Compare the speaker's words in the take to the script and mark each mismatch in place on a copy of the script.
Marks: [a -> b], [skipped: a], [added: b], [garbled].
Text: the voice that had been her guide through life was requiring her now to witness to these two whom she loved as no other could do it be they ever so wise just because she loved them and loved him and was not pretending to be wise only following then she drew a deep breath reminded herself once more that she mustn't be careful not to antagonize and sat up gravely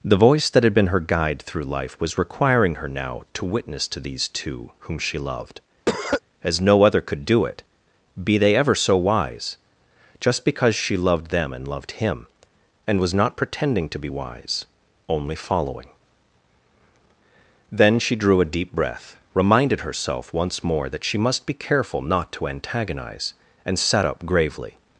the voice that had been her guide through life was requiring her now to witness to these two whom she loved as no other could do it be they ever so wise just because she loved them and loved him and was not pretending to be wise only following then she drew a deep breath reminded herself once more that she [mustn't -> must] be careful not to antagonize and sat up gravely